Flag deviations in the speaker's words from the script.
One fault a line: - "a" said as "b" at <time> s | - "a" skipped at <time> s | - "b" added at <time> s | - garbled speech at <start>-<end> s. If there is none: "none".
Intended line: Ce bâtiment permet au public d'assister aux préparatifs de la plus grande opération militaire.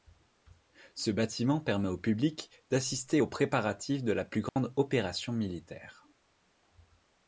none